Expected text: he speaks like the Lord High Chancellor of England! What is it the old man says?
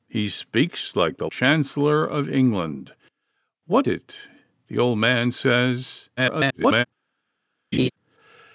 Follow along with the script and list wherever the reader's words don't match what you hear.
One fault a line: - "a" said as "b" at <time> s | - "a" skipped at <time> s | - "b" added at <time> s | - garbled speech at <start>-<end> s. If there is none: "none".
- "Lord High" skipped at 1.3 s
- "is" skipped at 3.9 s
- garbled speech at 6.2-6.8 s